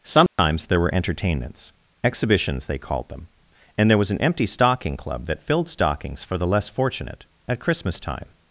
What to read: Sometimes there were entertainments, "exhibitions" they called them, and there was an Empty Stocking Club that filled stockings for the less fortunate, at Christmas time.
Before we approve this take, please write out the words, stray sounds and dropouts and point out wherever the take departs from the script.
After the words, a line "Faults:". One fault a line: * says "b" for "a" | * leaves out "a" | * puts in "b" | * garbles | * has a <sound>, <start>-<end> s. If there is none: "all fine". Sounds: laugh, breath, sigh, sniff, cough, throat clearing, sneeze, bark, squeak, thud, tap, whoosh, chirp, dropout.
Sometimes there were entertainments, "exhibitions" they called them, and there was an Empty Stocking Club that filled stockings for the less fortunate, at Christmas time.
Faults:
* has a dropout, 0.3-0.4 s